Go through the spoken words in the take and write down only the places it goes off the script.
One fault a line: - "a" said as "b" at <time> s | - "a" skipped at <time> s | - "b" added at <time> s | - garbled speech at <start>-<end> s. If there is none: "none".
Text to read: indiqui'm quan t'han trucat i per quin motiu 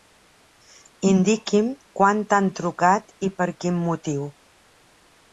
none